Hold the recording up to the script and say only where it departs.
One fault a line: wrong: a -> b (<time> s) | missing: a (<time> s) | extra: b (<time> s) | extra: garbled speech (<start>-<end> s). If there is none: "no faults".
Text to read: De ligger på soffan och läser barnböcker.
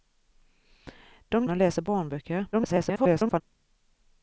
missing: ligger på soffan (1.4 s)
extra: garbled speech (2.5-3.4 s)